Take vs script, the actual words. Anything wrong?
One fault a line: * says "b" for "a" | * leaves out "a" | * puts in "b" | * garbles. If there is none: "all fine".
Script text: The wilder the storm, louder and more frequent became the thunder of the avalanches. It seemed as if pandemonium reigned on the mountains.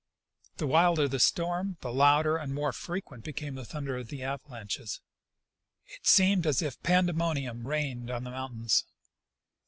* puts in "the"